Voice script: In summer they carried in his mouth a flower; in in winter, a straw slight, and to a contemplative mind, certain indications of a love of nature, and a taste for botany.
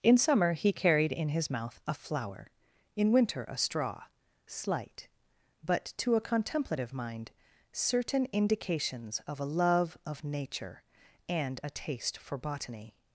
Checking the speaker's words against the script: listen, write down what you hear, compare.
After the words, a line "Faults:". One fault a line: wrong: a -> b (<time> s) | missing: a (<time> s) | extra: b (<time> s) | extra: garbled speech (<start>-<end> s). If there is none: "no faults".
In summer he carried in his mouth a flower; in winter, a straw slight, but to a contemplative mind, certain indications of a love of nature, and a taste for botany.
Faults:
wrong: they -> he (0.5 s)
missing: in (3.1 s)
wrong: and -> but (5.6 s)